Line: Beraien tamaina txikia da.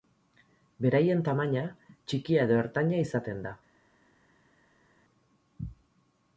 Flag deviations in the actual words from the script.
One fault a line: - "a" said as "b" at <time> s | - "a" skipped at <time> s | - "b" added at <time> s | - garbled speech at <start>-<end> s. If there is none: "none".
- "edo ertaina izaten" added at 2.5 s